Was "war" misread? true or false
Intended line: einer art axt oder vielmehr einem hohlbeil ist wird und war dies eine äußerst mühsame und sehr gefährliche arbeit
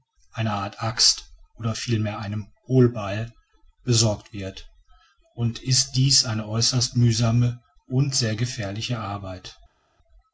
true